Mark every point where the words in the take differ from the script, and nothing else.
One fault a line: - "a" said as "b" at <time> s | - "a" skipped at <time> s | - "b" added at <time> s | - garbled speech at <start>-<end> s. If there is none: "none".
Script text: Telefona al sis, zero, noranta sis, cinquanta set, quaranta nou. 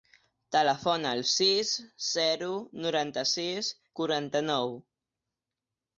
- "cinquanta set" skipped at 3.7 s